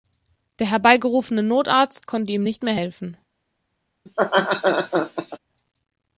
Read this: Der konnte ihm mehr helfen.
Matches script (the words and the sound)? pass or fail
fail